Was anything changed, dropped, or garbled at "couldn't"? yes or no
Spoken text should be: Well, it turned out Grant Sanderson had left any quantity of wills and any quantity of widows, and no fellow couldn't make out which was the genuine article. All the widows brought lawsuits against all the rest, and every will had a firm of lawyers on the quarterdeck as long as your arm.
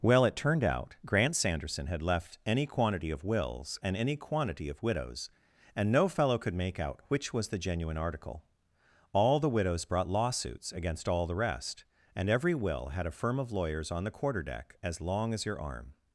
yes